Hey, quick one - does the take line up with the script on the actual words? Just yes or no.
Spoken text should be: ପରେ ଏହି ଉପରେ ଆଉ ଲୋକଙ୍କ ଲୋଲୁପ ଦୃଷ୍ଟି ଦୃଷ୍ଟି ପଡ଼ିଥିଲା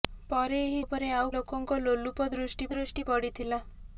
yes